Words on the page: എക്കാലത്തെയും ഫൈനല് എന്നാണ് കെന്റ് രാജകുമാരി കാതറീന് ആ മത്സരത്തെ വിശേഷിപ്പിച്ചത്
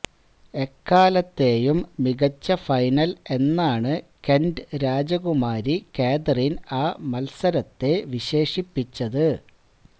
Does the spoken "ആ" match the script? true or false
true